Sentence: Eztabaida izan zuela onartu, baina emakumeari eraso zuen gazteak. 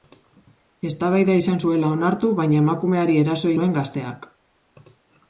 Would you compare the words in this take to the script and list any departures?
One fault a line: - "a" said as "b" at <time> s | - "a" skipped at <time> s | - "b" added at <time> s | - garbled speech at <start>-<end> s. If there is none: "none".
none